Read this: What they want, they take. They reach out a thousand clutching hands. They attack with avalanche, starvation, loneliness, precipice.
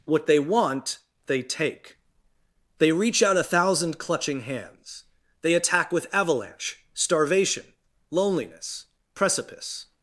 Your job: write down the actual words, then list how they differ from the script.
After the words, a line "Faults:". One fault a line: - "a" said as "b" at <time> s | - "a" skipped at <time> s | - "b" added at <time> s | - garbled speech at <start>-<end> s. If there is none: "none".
What they want, they take. They reach out a thousand clutching hands. They attack with avalanche, starvation, loneliness, precipice.
Faults:
none